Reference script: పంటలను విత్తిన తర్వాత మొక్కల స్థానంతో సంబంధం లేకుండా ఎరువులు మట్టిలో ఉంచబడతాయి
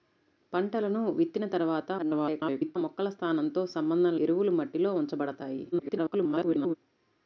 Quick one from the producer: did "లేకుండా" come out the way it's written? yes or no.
no